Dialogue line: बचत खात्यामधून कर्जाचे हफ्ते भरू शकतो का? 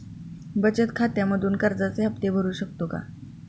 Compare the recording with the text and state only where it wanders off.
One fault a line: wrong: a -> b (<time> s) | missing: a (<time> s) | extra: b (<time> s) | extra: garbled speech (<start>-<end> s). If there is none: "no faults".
no faults